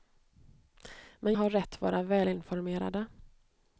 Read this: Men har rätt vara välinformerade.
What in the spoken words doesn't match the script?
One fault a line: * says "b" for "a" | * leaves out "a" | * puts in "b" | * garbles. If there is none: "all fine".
all fine